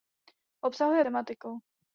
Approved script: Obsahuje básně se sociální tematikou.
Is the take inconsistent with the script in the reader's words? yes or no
yes